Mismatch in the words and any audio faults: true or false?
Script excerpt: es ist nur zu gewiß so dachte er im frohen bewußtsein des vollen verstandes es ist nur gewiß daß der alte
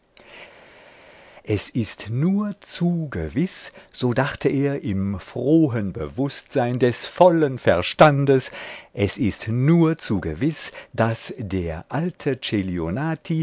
true